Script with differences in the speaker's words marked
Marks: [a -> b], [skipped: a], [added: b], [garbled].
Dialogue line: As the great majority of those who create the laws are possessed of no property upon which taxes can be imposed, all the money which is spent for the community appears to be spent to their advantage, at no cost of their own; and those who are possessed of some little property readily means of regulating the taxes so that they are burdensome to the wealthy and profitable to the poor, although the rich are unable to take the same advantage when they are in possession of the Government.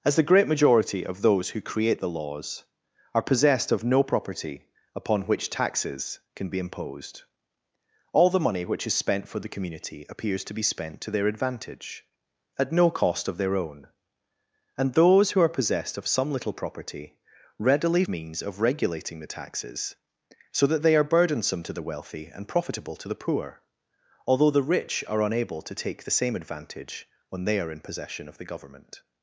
As the great majority of those who create the laws are possessed of no property upon which taxes can be imposed, all the money which is spent for the community appears to be spent to their advantage, at no cost of their own; and those who are possessed of some little property readily means of regulating the taxes so that they are burdensome to the wealthy and profitable to the poor, although the rich are unable to take the same advantage when they are in possession of the Government.